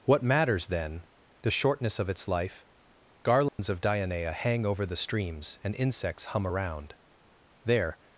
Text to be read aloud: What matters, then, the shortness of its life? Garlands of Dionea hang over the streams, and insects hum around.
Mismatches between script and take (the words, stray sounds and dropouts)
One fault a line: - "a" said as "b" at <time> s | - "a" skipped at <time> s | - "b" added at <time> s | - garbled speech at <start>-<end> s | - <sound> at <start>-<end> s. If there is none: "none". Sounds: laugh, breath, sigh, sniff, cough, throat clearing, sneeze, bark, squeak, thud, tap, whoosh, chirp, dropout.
- dropout at 3.5-3.6 s
- "There" added at 7.6 s